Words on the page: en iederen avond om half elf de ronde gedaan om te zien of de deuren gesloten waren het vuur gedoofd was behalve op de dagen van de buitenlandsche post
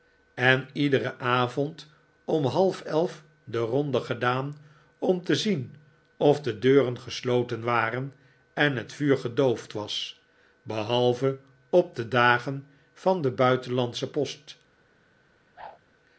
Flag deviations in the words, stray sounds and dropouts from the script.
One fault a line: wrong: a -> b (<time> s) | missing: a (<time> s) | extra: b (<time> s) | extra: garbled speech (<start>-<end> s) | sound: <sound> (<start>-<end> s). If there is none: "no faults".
extra: en (8.5 s)
sound: whoosh (15.6-15.8 s)